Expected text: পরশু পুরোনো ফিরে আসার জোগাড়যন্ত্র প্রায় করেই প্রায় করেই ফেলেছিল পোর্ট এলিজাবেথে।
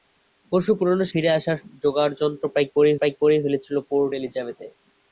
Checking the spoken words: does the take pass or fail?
pass